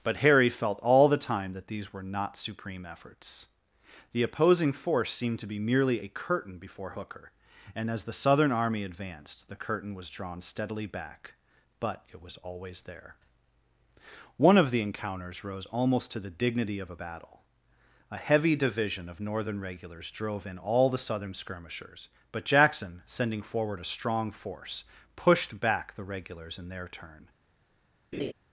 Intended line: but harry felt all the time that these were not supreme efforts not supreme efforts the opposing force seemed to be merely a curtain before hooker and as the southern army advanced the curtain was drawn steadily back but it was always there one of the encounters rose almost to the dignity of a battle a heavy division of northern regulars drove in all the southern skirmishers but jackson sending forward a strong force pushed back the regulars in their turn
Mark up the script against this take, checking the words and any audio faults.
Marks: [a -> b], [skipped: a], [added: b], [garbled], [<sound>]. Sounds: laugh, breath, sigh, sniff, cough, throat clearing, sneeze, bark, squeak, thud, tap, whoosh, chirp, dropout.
but harry felt all the time that these were not supreme efforts [skipped: not supreme efforts] the opposing force seemed to be merely a curtain before hooker and as the southern army advanced the curtain was drawn steadily back but it was always there one of the encounters rose almost to the dignity of a battle a heavy division of northern regulars drove in all the southern skirmishers but jackson sending forward a strong force pushed back the regulars in their turn [laugh]